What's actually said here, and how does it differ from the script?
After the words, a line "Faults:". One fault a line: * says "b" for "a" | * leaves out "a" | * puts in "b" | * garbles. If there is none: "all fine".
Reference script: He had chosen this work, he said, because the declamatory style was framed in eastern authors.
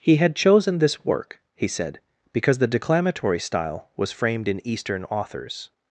He had chosen this work, he said, because the declamatory style was framed in eastern authors.
Faults:
all fine